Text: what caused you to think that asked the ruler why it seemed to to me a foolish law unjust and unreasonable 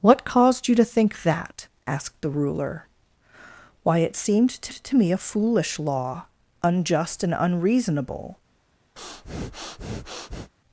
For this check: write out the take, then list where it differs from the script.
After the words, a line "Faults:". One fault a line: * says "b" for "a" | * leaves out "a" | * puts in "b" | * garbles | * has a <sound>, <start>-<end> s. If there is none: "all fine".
what caused you to think that asked the ruler why it seemed to to me a foolish law unjust and unreasonable
Faults:
* has a breath, 9.0-10.5 s